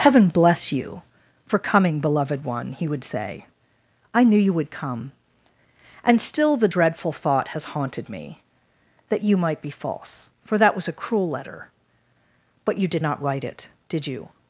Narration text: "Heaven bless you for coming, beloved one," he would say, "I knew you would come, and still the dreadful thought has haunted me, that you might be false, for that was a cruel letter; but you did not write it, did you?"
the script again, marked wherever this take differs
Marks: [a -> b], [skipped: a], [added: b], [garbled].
"Heaven bless you for coming, beloved one," he would say, "I knew you would come, and still the dreadful thought has haunted me, that you might be false, for that was a cruel letter; but you did not write it, did you?"